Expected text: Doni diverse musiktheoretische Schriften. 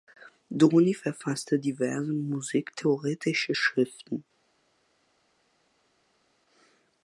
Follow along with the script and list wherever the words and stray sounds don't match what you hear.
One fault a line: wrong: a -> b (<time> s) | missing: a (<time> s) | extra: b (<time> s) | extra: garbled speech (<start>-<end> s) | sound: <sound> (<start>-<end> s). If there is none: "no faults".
extra: verfasste (0.9 s)